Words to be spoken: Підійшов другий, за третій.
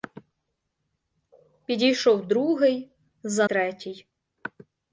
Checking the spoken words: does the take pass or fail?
pass